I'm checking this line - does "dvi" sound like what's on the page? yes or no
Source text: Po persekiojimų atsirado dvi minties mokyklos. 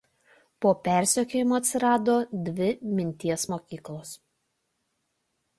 yes